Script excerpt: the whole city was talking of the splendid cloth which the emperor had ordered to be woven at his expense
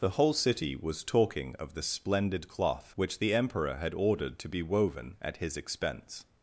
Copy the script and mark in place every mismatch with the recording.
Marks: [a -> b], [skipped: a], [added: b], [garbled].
the whole city was talking of the splendid cloth which the emperor had ordered to be woven at his expense